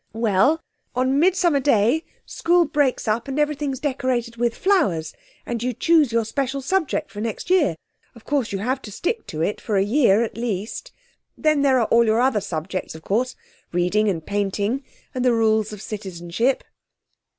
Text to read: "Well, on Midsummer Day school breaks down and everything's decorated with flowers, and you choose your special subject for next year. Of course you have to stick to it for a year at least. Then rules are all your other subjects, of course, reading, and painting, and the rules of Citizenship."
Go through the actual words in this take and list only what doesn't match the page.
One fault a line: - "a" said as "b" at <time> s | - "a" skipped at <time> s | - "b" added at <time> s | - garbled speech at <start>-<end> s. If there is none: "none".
- "down" said as "up" at 3.1 s
- "rules" said as "there" at 11.6 s